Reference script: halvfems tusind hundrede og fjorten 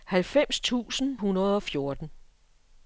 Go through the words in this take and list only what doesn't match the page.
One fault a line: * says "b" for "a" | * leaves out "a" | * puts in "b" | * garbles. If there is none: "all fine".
all fine